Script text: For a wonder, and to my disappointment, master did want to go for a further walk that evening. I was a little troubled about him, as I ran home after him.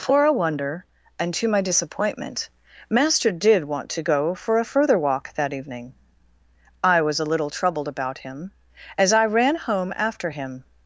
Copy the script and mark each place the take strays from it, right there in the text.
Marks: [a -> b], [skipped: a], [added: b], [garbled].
For a wonder, and to my disappointment, master did want to go for a further walk that evening. I was a little troubled about him, as I ran home after him.